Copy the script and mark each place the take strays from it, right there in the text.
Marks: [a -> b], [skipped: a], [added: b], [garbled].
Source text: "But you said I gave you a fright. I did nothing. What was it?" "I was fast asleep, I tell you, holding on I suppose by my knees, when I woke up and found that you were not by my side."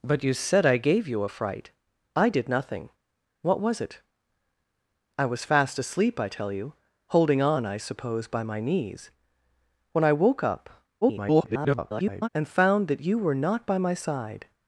"But you said I gave you a fright. I did nothing. What was it?" "I was fast asleep, I tell you, holding on I suppose by my knees, when I woke up [garbled] and found that you were not by my side."